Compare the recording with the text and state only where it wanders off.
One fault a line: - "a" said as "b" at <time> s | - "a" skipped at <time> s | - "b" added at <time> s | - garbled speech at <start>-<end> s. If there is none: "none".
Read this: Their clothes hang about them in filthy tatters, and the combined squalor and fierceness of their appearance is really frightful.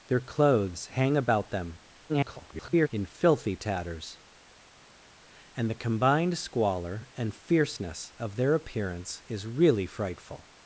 - garbled speech at 2.1-2.9 s